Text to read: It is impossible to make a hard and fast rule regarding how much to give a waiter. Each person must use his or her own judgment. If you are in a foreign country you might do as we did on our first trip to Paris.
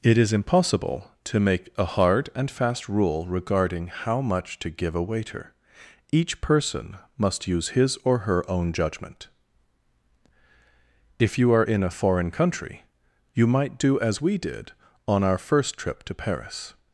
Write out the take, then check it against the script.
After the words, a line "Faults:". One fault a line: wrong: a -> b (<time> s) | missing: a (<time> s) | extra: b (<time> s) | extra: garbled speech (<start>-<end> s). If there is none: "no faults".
It is impossible to make a hard and fast rule regarding how much to give a waiter. Each person must use his or her own judgment. If you are in a foreign country you might do as we did on our first trip to Paris.
Faults:
no faults